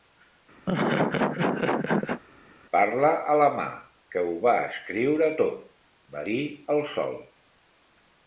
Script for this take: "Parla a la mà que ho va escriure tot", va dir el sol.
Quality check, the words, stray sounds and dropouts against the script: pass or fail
fail